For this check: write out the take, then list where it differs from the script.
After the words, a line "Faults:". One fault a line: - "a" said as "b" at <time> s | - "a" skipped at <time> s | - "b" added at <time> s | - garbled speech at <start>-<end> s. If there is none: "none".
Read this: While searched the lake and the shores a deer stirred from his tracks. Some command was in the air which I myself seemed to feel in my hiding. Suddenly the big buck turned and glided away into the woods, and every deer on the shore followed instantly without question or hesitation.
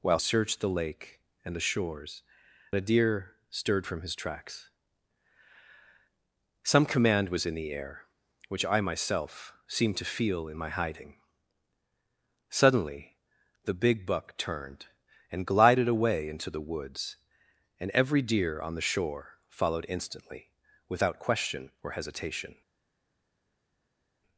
While searched the lake and the shores a deer stirred from his tracks. Some command was in the air which I myself seemed to feel in my hiding. Suddenly the big buck turned and glided away into the woods, and every deer on the shore followed instantly without question or hesitation.
Faults:
none